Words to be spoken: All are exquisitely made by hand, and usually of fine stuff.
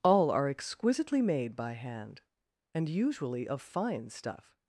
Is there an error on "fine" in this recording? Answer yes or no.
no